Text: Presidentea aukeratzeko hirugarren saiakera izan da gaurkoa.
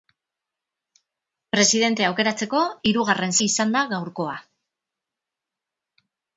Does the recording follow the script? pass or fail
fail